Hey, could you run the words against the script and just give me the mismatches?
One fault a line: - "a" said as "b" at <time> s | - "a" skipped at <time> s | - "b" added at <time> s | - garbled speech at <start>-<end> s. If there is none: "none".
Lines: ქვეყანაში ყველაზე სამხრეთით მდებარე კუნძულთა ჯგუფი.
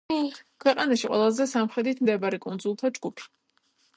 none